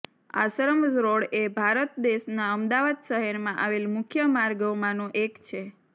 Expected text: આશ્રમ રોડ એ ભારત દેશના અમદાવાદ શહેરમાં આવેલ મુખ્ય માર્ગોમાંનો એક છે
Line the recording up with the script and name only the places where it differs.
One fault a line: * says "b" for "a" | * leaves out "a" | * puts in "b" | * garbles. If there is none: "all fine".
all fine